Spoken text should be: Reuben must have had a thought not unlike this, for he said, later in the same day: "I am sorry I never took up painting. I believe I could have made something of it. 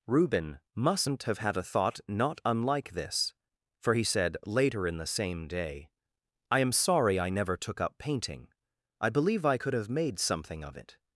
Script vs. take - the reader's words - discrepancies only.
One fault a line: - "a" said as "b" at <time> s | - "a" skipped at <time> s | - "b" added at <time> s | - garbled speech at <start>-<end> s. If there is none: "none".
- "must" said as "mustn't" at 0.8 s